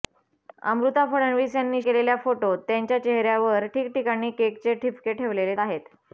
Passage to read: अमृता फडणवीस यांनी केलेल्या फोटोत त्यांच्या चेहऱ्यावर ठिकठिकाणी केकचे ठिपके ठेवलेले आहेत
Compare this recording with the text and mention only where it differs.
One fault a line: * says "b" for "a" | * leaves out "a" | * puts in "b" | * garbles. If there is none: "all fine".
all fine